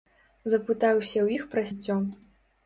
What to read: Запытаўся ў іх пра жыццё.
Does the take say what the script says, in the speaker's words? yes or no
yes